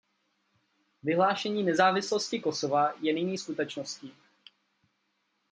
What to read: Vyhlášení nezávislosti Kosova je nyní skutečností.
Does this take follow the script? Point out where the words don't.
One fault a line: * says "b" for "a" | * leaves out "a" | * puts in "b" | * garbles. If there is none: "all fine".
all fine